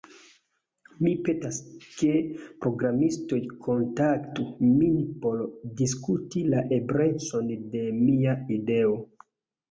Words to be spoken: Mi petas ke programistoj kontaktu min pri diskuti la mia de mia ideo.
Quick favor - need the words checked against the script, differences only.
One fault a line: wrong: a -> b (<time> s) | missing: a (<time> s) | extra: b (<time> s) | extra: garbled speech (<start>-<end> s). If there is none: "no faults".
wrong: pri -> por (5.2 s)
wrong: mia -> eblecon (6.8 s)